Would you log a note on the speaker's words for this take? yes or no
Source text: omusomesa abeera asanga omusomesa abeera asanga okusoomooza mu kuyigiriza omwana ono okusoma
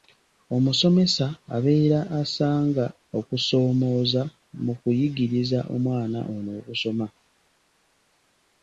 yes